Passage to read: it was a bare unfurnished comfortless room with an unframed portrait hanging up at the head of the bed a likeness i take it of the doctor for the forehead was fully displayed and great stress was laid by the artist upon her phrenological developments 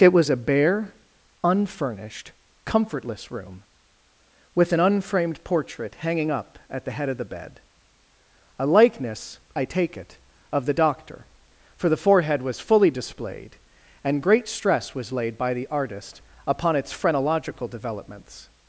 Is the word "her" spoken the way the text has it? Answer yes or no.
no